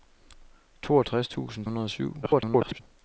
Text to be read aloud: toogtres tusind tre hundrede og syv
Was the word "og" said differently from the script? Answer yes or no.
no